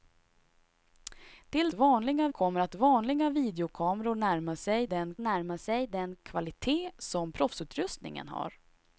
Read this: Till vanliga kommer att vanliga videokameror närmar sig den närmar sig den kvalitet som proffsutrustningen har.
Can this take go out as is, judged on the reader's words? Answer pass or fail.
pass